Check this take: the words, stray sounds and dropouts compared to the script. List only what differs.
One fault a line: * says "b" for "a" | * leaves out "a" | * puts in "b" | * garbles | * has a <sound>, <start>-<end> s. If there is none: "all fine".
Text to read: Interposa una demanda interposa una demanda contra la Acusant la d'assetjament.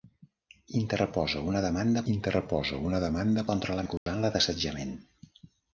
* has a dropout, 4.0-4.1 s